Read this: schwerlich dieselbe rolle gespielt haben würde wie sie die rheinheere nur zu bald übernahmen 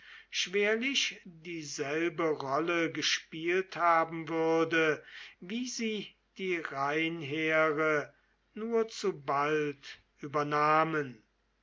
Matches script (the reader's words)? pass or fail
pass